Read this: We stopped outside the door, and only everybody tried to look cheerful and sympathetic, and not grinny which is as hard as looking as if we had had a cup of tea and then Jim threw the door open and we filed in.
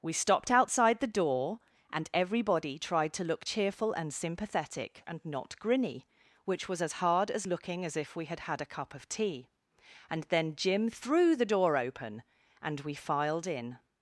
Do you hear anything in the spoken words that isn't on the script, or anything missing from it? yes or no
yes